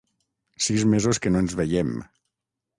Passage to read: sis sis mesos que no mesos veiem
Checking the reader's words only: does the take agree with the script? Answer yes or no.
no